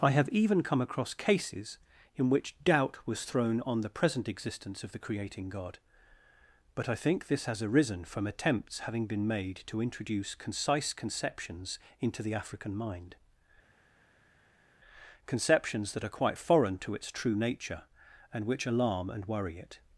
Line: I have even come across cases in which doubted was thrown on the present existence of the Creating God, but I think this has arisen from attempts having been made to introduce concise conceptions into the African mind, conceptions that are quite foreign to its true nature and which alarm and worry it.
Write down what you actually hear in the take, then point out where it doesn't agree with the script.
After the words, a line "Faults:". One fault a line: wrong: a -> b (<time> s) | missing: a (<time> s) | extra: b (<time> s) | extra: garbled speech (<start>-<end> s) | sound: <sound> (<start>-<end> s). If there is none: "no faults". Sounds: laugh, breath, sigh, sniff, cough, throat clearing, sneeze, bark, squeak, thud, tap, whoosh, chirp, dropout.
I have even come across cases in which doubt was thrown on the present existence of the Creating God, but I think this has arisen from attempts having been made to introduce concise conceptions into the African mind, conceptions that are quite foreign to its true nature and which alarm and worry it.
Faults:
wrong: doubted -> doubt (2.6 s)